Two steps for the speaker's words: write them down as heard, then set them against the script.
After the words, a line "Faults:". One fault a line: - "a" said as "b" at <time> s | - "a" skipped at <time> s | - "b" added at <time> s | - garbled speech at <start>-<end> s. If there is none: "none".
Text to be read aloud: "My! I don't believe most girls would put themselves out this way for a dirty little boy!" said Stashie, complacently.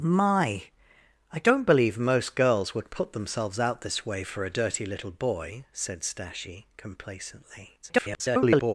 "My! I don't believe most girls would put themselves out this way for a dirty little boy!" said Stashie, complacently. [garbled]
Faults:
- garbled speech at 7.8-8.7 s